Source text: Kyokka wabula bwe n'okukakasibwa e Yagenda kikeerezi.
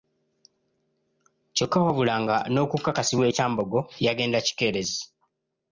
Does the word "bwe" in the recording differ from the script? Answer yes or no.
yes